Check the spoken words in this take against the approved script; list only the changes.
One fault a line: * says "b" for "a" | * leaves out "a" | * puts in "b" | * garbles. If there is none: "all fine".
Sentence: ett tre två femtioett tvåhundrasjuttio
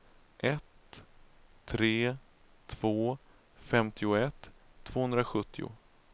all fine